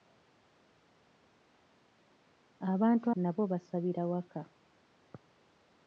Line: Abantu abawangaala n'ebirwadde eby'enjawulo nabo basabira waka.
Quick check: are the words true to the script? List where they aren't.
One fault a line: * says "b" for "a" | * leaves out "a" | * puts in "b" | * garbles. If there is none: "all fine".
* leaves out "abawangaala n'ebirwadde eby'enjawulo"